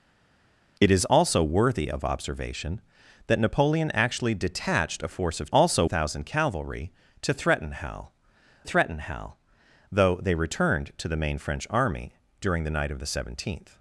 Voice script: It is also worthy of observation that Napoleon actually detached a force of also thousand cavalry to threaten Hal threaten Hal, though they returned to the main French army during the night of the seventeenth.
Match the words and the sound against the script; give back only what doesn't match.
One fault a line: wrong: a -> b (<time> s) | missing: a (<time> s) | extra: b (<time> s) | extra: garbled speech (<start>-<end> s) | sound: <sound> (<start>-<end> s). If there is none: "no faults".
no faults